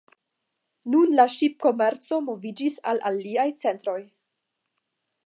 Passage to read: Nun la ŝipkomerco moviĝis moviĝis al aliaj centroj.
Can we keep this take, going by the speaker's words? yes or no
no